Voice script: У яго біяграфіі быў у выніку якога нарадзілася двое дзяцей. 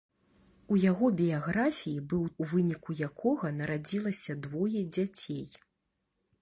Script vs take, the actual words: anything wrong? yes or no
no